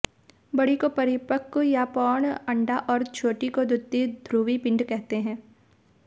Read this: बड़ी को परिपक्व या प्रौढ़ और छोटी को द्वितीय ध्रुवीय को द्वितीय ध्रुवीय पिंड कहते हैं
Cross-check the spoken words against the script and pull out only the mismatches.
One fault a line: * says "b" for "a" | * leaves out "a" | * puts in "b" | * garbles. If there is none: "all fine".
* puts in "अंडा"
* leaves out "को द्वितीय ध्रुवीय"